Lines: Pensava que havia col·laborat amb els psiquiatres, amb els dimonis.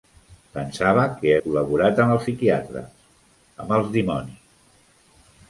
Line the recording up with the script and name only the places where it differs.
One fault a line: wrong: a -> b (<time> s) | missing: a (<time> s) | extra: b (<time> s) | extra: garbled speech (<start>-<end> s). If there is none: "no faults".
missing: havia (1.3 s)